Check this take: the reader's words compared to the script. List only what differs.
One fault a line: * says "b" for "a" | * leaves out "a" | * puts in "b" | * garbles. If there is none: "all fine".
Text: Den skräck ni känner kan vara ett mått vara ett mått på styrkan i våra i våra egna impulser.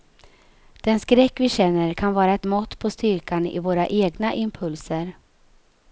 * says "vi" for "ni"
* leaves out "vara ett mått"
* leaves out "i våra"